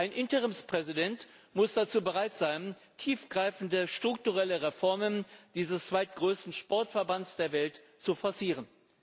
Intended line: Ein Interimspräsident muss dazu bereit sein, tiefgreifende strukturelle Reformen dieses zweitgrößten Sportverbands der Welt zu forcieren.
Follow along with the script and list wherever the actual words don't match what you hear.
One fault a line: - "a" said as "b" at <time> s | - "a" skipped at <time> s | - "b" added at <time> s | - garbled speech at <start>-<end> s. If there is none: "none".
none